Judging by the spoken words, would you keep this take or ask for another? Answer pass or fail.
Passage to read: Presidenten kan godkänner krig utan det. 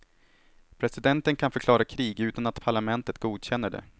fail